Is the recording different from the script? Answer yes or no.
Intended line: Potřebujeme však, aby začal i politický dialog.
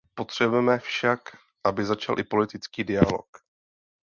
no